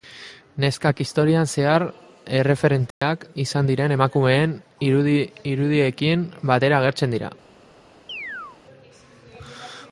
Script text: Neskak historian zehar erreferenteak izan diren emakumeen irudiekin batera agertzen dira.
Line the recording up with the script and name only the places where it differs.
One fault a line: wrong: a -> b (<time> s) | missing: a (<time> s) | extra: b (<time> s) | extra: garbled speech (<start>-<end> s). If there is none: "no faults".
no faults